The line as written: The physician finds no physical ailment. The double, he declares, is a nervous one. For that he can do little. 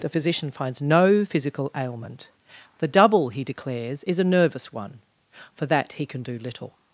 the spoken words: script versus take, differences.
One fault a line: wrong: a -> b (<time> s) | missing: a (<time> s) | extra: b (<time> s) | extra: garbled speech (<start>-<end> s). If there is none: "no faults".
no faults